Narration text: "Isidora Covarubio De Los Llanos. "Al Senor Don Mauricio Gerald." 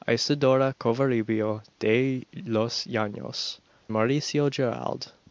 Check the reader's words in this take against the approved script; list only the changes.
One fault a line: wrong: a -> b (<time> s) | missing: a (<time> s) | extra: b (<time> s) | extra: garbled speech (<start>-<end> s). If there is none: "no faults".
missing: Al Senor Don (3.6 s)